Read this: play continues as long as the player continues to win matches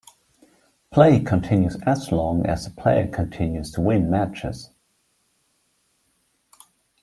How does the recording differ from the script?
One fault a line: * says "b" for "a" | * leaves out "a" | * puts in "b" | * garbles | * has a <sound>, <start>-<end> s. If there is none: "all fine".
all fine